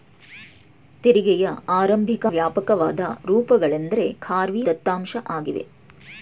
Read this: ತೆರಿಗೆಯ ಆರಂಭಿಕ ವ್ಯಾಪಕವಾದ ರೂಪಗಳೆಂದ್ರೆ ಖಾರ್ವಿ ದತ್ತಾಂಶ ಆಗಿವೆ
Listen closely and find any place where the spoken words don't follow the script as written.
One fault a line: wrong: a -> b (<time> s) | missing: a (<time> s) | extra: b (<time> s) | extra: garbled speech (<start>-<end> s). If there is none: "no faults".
no faults